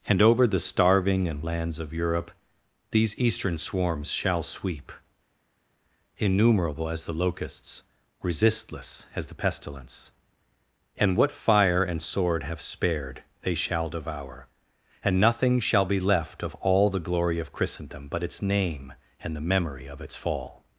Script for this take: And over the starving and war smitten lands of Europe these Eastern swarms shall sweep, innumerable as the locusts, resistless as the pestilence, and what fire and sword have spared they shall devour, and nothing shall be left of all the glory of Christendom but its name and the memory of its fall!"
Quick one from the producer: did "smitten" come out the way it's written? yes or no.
no